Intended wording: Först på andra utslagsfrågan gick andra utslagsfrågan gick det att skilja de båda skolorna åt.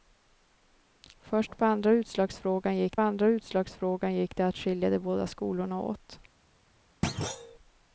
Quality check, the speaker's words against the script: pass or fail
pass